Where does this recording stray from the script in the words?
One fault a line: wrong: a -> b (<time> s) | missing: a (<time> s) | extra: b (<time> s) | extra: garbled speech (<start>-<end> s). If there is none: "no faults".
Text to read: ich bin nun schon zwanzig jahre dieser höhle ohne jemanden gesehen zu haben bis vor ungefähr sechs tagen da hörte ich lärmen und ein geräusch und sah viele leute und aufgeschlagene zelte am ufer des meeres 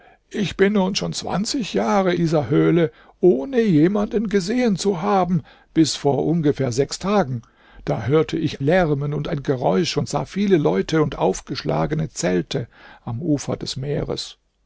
no faults